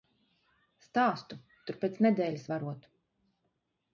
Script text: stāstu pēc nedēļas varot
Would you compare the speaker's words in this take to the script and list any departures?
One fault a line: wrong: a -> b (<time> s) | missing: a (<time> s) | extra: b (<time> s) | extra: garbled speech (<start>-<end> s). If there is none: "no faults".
extra: tur (1.7 s)